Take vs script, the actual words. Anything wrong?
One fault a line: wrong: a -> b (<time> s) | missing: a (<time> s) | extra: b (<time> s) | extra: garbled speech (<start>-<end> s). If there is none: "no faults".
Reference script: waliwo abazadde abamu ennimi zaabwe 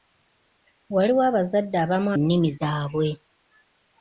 no faults